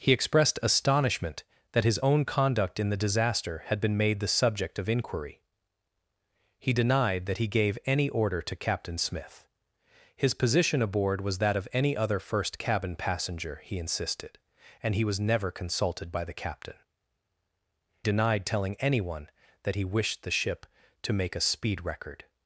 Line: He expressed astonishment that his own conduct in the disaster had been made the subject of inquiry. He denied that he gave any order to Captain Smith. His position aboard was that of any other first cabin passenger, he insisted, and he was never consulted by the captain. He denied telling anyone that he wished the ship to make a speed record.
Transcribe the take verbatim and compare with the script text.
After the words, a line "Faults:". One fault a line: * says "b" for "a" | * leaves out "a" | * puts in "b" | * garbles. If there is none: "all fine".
He expressed astonishment that his own conduct in the disaster had been made the subject of inquiry. He denied that he gave any order to Captain Smith. His position aboard was that of any other first cabin passenger, he insisted, and he was never consulted by the captain. Denied telling anyone that he wished the ship to make a speed record.
Faults:
* leaves out "He"